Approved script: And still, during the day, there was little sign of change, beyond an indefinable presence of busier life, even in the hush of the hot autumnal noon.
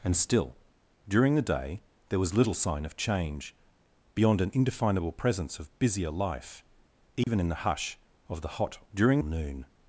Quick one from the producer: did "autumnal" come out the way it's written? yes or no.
no